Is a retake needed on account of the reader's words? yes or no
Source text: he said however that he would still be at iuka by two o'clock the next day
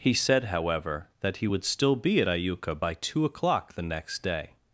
no